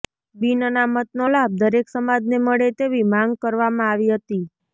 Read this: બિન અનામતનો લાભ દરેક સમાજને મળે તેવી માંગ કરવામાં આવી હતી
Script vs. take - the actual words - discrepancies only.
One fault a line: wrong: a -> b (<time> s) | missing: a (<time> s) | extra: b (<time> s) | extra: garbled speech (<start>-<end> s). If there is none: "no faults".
no faults